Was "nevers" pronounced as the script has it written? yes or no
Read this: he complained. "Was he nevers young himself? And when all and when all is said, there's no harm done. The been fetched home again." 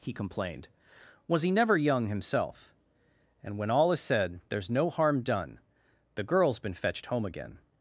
no